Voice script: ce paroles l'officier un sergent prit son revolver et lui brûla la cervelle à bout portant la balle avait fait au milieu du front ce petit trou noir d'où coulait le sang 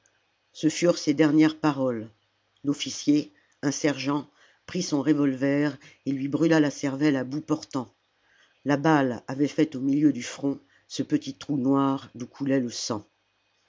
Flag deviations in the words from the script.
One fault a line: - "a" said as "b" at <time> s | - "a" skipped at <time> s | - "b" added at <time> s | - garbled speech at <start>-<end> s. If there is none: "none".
- "furent ses dernières" added at 0.7 s